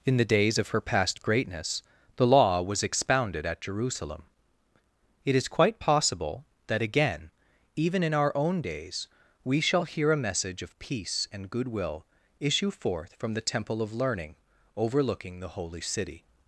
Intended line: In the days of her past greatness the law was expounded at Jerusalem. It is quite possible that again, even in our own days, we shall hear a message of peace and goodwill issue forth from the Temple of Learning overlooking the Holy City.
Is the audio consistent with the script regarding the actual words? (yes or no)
yes